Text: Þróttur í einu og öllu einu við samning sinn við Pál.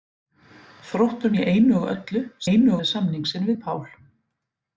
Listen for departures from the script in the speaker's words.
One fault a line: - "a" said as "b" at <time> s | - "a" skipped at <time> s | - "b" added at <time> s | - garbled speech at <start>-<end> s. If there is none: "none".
none